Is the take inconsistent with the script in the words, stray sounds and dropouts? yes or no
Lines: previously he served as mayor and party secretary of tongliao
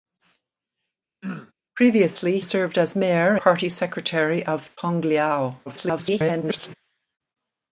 yes